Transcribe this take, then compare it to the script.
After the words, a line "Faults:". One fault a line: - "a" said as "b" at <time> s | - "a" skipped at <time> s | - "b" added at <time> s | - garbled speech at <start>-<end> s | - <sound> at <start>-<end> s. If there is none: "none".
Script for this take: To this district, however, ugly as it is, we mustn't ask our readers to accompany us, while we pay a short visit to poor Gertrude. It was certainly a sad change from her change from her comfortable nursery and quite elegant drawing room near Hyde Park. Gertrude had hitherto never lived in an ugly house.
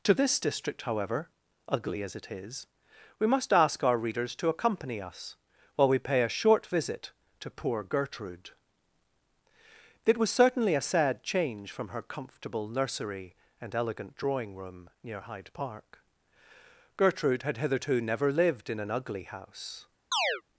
To this district, however, ugly as it is, we must ask our readers to accompany us, while we pay a short visit to poor Gertrude. It was certainly a sad change from her comfortable nursery and elegant drawing room near Hyde Park. Gertrude had hitherto never lived in an ugly house.
Faults:
- "mustn't" said as "must" at 3.3 s
- "change from her" skipped at 12.0 s
- "quite" skipped at 13.7 s
- chirp at 20.1-20.4 s